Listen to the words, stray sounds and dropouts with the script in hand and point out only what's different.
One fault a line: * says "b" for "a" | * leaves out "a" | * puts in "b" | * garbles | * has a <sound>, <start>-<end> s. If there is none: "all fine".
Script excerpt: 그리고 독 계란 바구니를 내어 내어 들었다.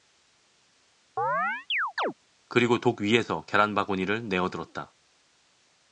* has a chirp, 1.2-2.1 s
* puts in "위에서"
* leaves out "내어"